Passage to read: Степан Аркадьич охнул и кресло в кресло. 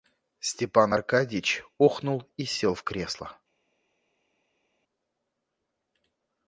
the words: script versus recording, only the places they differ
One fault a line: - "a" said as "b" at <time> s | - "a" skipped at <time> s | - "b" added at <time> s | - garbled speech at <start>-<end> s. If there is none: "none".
- "кресло" said as "сел" at 2.4 s